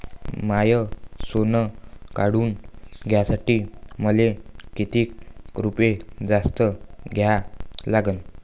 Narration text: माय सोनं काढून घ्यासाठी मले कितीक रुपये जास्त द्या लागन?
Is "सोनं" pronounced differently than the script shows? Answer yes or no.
no